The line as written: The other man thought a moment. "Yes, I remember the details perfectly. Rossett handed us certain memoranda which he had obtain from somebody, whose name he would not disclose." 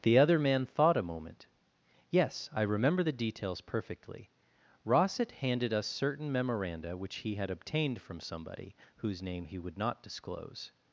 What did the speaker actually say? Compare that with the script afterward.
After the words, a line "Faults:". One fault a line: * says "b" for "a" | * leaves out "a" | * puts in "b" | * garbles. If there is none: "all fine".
The other man thought a moment. "Yes, I remember the details perfectly. Rossett handed us certain memoranda which he had obtained from somebody, whose name he would not disclose."
Faults:
* says "obtained" for "obtain"